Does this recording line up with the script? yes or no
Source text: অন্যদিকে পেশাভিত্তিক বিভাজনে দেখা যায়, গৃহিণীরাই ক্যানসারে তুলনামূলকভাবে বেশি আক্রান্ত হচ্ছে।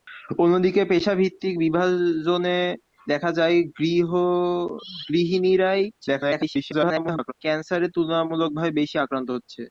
no